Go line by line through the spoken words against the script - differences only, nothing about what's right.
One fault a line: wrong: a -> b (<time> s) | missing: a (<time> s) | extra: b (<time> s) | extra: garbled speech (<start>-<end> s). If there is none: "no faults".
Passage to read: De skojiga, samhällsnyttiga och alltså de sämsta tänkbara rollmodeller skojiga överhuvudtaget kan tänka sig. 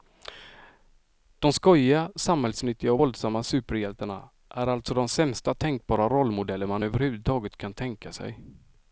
extra: våldsamma superhjältarna är (3.0 s)
wrong: skojiga -> man (6.7 s)